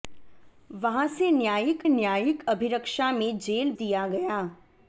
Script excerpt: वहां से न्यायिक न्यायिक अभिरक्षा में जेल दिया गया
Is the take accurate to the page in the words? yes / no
yes